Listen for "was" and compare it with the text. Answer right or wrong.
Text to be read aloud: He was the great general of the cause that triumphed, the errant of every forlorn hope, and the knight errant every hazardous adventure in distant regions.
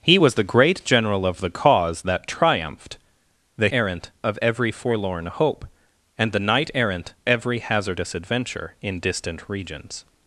right